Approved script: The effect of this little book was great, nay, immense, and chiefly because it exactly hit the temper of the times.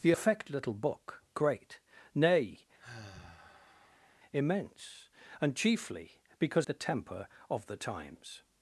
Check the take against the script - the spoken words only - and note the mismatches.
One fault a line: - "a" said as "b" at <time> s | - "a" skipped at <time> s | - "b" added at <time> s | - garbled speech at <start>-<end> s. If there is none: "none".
- "of this" skipped at 0.5 s
- "was" skipped at 1.2 s
- "it exactly hit" skipped at 6.7 s